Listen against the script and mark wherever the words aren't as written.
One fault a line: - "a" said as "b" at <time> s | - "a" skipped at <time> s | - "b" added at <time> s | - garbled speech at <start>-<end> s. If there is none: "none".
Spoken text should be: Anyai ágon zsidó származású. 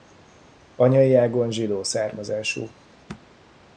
none